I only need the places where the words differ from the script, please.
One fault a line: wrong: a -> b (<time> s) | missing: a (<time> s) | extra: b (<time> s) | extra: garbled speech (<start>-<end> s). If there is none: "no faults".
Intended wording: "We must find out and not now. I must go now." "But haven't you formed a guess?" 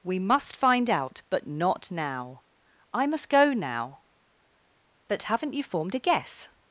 wrong: and -> but (1.3 s)